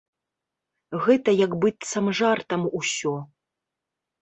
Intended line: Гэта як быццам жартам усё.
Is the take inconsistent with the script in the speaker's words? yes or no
no